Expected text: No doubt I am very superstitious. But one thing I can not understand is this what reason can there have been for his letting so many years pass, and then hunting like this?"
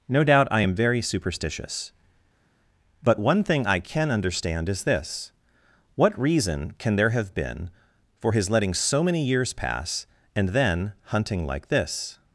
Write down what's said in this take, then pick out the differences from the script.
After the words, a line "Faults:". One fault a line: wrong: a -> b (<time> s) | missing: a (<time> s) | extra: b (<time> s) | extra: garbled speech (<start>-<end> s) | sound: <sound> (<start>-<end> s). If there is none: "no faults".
No doubt I am very superstitious. But one thing I can understand is this what reason can there have been for his letting so many years pass, and then hunting like this?"
Faults:
missing: not (4.1 s)